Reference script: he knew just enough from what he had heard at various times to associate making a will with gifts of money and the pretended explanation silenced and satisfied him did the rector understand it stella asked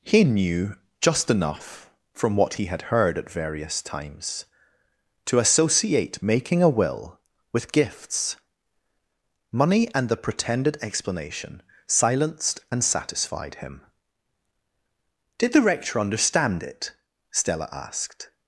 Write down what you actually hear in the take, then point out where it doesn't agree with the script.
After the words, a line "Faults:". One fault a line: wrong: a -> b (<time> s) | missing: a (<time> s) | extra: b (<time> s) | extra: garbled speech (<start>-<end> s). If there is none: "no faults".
he knew just enough from what he had heard at various times to associate making a will with gifts money and the pretended explanation silenced and satisfied him did the rector understand it stella asked
Faults:
missing: of (8.4 s)